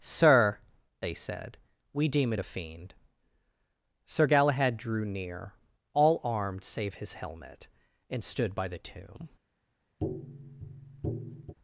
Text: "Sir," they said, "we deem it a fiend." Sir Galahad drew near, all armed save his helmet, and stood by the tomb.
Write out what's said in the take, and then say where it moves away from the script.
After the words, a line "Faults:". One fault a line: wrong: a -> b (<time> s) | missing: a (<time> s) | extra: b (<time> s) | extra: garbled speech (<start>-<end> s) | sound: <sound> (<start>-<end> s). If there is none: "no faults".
"Sir," they said, "we deem it a fiend." Sir Galahad drew near, all armed save his helmet, and stood by the tomb.
Faults:
sound: tap (10.0-11.5 s)